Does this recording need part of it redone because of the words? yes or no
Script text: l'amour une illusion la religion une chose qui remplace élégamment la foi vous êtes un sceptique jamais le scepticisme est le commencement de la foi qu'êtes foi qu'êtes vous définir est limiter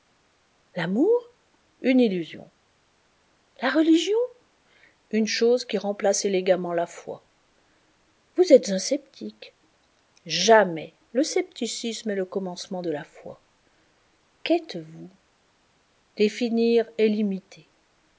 yes